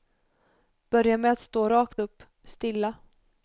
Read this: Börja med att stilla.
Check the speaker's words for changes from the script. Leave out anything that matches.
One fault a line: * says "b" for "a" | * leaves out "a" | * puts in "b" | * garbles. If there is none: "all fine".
* puts in "stå rakt upp"